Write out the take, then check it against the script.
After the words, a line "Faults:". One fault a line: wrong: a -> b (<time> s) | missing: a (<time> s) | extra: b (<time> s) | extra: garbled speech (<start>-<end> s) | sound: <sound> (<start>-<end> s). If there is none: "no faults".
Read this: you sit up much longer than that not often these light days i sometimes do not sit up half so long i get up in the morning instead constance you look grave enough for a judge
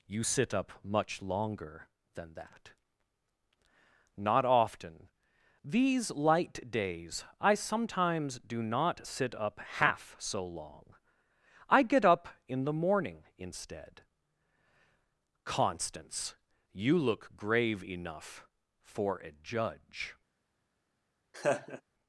you sit up much longer than that not often these light days i sometimes do not sit up half so long i get up in the morning instead constance you look grave enough for a judge
Faults:
sound: laugh (21.3-21.8 s)